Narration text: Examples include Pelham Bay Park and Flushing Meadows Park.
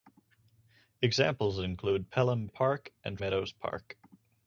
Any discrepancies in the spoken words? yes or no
yes